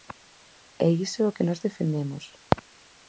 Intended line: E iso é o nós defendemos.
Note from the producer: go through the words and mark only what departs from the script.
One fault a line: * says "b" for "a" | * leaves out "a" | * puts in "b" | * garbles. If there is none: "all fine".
* puts in "que"